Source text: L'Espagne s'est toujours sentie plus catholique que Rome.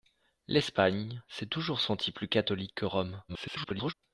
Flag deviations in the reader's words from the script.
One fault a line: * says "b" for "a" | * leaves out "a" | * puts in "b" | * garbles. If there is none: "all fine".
* garbles